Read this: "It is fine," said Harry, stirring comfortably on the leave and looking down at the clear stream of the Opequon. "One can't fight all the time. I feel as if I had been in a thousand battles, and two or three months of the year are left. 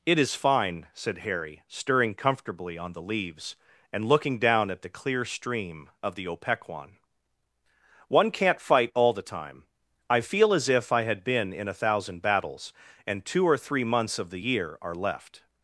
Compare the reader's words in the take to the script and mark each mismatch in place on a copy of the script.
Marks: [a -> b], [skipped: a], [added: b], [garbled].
"It is fine," said Harry, stirring comfortably on the [leave -> leaves] and looking down at the clear stream of the Opequon. "One can't fight all the time. I feel as if I had been in a thousand battles, and two or three months of the year are left.